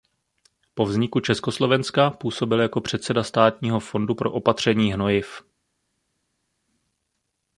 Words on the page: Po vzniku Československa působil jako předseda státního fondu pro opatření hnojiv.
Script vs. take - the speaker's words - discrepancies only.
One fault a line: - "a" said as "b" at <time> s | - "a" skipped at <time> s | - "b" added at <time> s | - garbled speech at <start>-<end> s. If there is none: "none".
none